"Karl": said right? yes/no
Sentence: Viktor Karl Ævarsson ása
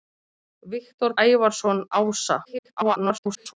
no